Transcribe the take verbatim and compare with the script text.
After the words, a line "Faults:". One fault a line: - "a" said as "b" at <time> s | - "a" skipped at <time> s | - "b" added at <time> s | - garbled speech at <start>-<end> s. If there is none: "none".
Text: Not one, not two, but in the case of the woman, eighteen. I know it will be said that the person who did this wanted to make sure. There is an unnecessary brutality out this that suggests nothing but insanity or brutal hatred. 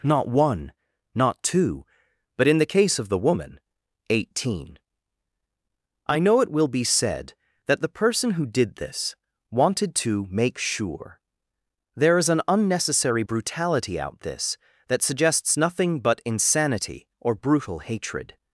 Not one, not two, but in the case of the woman, eighteen. I know it will be said that the person who did this wanted to make sure. There is an unnecessary brutality out this that suggests nothing but insanity or brutal hatred.
Faults:
none